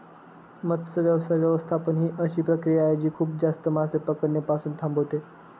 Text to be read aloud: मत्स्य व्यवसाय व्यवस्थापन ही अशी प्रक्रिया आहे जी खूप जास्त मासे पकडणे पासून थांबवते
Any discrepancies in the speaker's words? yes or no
no